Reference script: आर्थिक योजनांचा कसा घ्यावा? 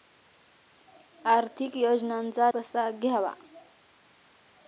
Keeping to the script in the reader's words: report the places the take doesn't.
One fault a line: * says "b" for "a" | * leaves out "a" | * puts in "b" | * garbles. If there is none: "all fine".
all fine